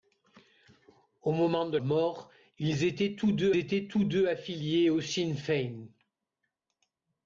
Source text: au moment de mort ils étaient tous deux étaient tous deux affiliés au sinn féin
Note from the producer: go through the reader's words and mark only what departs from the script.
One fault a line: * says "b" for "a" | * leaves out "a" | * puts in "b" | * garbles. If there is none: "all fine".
all fine